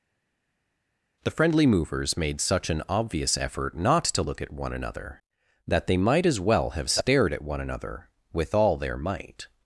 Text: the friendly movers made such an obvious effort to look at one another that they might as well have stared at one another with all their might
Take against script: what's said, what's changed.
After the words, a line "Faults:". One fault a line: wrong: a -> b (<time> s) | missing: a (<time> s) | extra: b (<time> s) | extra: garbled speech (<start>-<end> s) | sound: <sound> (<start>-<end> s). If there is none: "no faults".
the friendly movers made such an obvious effort not to look at one another that they might as well have stared at one another with all their might
Faults:
extra: not (3.8 s)